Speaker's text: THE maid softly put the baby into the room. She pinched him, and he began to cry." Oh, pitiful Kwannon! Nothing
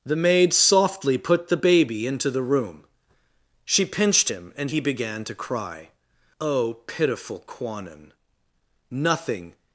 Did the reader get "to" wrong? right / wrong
right